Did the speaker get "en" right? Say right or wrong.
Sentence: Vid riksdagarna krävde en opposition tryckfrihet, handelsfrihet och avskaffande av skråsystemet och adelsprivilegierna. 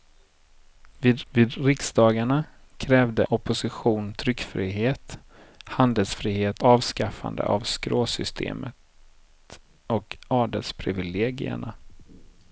wrong